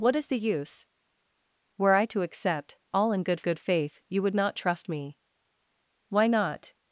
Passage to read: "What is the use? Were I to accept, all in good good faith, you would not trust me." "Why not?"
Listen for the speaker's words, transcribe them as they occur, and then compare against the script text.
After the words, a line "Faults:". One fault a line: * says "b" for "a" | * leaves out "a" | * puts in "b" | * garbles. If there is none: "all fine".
"What is the use? Were I to accept, all in good good faith, you would not trust me." "Why not?"
Faults:
all fine